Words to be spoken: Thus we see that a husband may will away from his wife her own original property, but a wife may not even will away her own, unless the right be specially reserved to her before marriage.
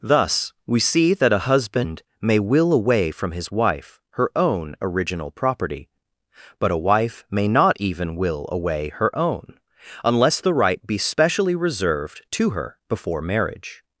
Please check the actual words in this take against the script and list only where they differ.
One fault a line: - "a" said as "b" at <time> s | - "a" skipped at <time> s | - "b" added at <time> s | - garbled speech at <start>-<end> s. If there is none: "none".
none